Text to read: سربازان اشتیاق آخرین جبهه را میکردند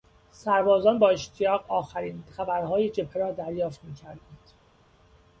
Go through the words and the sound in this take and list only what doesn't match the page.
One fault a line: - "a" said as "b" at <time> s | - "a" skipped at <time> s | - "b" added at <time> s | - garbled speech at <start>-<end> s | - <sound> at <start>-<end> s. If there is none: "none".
- "با" added at 1.0 s
- "خبرهای" added at 2.3 s
- "دریافت" added at 3.3 s